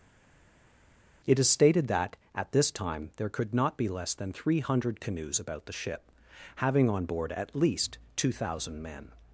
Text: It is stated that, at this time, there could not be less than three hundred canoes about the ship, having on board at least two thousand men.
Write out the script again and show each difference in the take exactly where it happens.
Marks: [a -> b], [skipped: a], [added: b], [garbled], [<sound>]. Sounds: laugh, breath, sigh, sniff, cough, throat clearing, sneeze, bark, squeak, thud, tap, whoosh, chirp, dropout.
It is stated that, at this time, there could not be less than three hundred canoes about the ship, having on board at least two thousand men.